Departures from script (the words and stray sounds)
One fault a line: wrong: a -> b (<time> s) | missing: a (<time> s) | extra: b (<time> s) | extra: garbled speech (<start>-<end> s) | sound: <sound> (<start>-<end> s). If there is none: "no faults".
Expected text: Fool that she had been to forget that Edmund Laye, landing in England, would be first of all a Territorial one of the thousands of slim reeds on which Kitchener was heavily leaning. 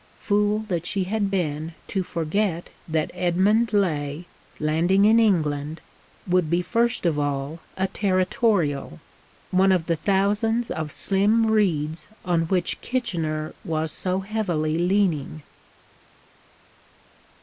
extra: so (13.9 s)